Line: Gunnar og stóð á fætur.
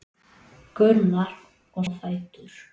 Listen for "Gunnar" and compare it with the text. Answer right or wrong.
right